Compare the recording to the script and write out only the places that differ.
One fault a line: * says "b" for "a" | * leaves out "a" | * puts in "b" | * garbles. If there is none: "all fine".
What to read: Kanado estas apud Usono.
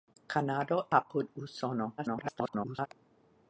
* leaves out "estas"
* garbles